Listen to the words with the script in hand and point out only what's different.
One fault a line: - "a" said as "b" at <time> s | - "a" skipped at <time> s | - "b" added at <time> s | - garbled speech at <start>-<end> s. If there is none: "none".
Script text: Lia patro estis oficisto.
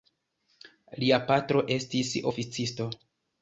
none